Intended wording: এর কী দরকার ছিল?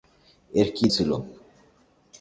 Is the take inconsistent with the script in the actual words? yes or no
yes